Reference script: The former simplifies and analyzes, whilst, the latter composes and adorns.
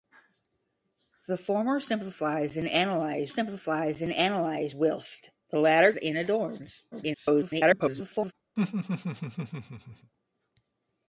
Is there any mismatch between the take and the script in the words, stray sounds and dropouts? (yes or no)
yes